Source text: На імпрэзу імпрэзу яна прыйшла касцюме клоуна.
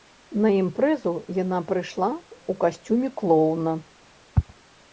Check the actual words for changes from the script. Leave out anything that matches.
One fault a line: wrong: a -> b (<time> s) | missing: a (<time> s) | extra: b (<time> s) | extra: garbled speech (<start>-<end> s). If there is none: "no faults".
missing: імпрэзу (1.1 s)
extra: ў (2.1 s)